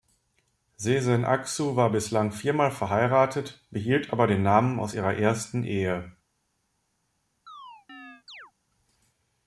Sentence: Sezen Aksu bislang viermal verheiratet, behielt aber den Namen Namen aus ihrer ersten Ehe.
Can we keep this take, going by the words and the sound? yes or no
no